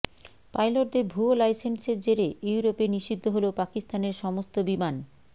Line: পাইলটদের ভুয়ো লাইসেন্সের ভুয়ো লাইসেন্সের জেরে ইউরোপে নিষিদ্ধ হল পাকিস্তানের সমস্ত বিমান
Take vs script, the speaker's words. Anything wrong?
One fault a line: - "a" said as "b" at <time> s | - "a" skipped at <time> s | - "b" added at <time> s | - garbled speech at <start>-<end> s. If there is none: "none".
- "ভুয়ো লাইসেন্সের" skipped at 2.0 s